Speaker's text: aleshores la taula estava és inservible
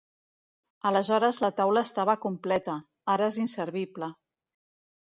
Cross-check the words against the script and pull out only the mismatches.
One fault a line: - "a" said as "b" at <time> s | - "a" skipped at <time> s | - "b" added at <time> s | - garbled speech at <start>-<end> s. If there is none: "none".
- "completa ara" added at 2.2 s